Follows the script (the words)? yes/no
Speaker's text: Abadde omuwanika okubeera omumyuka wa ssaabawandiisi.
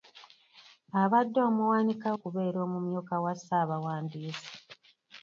yes